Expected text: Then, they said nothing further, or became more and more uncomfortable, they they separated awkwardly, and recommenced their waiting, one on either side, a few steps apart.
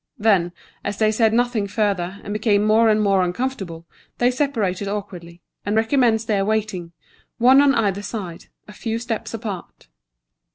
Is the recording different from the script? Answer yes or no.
yes